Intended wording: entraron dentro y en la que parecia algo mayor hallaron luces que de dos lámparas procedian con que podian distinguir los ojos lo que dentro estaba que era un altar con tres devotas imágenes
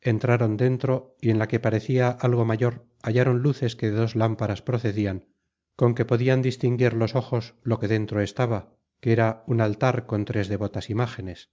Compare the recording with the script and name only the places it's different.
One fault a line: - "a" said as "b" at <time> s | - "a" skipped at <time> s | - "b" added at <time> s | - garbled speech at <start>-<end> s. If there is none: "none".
none